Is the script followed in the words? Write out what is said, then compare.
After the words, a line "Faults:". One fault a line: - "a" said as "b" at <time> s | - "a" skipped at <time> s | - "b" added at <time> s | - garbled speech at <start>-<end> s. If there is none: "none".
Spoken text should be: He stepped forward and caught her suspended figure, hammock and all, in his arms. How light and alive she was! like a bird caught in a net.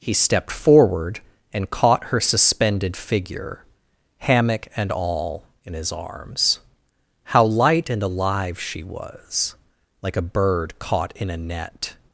He stepped forward and caught her suspended figure, hammock and all, in his arms. How light and alive she was! like a bird caught in a net.
Faults:
none